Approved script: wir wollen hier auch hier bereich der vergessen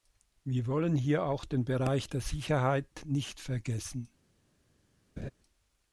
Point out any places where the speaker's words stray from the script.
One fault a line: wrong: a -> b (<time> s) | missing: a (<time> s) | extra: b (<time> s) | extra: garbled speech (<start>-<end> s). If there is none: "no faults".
wrong: hier -> den (1.4 s)
extra: sicherheit nicht (2.2 s)